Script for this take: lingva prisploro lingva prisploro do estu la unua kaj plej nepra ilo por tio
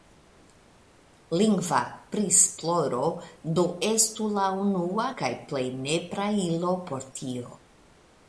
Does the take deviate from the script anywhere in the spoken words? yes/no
yes